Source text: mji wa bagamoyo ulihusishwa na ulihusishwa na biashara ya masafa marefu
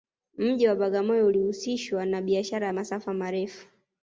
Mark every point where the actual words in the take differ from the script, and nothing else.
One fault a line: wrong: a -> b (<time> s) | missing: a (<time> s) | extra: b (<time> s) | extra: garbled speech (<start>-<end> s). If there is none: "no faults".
missing: ulihusishwa na (2.2 s)